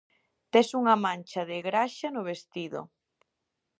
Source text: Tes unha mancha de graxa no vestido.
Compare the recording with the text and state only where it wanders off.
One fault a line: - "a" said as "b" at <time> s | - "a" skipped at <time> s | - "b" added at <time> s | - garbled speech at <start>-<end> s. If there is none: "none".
none